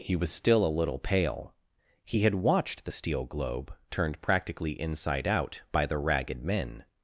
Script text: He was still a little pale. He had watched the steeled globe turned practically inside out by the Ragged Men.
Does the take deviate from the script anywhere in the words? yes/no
yes